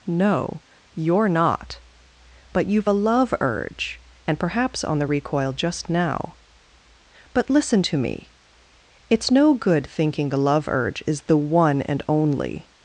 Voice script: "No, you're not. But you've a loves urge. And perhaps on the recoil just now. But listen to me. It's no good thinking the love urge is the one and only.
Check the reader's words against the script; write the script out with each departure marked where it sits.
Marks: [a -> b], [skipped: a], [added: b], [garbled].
"No, you're not. But you've a [loves -> love] urge. And perhaps on the recoil just now. But listen to me. It's no good thinking the love urge is the one and only.